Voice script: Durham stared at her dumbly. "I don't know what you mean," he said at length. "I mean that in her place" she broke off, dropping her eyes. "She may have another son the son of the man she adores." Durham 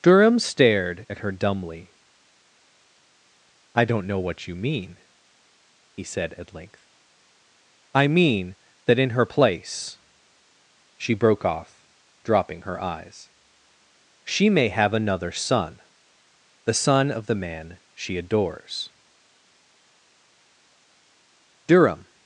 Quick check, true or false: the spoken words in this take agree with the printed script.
true